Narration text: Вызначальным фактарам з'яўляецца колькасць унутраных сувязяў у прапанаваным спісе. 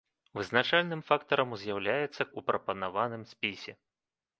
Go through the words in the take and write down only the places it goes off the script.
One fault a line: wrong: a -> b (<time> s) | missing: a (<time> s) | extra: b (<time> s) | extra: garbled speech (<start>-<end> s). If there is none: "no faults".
missing: колькасць унутраных сувязяў (2.3 s)